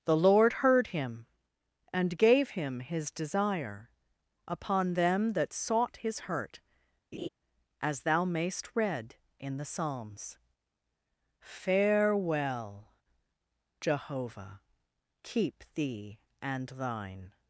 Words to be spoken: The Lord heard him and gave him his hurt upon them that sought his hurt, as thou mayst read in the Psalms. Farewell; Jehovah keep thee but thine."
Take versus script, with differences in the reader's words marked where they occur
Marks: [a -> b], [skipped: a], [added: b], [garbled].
The Lord heard him and gave him his [hurt -> desire] upon them that sought his hurt, as thou mayst read in the Psalms. Farewell; Jehovah keep thee [but -> and] thine."